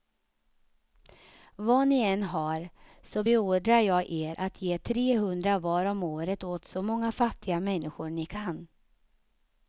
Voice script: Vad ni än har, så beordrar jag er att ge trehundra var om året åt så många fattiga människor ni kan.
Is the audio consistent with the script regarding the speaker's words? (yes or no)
yes